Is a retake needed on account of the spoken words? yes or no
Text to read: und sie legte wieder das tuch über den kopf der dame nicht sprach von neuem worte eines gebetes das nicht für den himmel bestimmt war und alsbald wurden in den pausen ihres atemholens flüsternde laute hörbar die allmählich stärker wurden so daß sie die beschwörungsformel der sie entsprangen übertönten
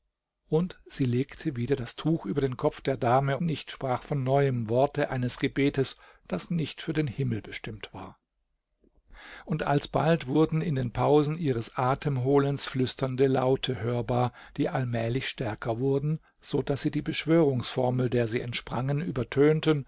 no